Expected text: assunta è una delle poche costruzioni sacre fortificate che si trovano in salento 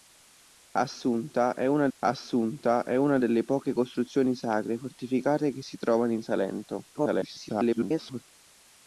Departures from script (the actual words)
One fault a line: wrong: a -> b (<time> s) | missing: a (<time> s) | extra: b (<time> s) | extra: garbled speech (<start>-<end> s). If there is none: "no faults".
extra: assunta è una (2.0 s)
extra: garbled speech (6.9-8.2 s)